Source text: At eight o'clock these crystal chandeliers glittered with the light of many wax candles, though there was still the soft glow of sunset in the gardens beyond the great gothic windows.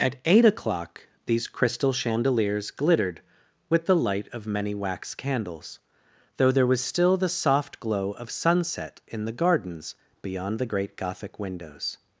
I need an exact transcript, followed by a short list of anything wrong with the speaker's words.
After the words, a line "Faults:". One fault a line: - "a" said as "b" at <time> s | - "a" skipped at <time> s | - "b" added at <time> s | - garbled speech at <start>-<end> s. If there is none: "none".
At eight o'clock these crystal chandeliers glittered with the light of many wax candles, though there was still the soft glow of sunset in the gardens beyond the great gothic windows.
Faults:
none